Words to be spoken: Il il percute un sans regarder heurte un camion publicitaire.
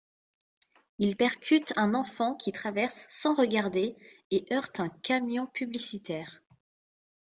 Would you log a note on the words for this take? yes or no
yes